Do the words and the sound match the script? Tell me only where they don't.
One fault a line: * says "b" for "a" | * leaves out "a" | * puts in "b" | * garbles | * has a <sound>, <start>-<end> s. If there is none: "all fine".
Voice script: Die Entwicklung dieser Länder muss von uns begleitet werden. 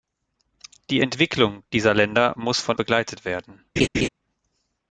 * leaves out "uns"
* has a laugh, 3.8-4.1 s